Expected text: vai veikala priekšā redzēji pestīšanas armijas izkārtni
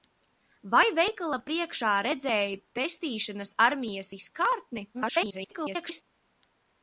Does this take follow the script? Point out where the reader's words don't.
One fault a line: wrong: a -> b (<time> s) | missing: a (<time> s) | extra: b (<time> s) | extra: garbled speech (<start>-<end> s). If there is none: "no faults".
extra: garbled speech (4.9-6.0 s)